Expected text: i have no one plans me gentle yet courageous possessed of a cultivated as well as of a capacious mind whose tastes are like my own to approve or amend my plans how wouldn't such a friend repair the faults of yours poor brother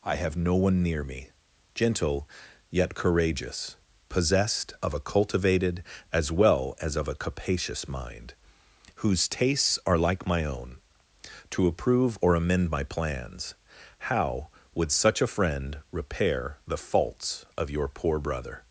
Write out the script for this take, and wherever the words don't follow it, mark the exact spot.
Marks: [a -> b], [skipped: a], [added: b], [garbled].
i have no one [plans -> near] me gentle yet courageous possessed of a cultivated as well as of a capacious mind whose tastes are like my own to approve or amend my plans how [wouldn't -> would] such a friend repair the faults of [yours -> your] poor brother